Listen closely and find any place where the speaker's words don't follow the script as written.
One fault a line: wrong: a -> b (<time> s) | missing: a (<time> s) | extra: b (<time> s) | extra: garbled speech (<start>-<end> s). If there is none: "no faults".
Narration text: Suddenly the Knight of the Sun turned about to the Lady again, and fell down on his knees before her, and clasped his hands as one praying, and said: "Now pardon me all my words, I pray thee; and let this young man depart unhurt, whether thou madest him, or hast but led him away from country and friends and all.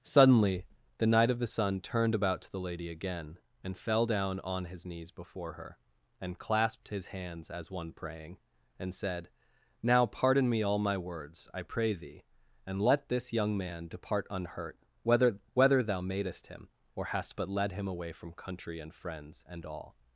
extra: whether (15.5 s)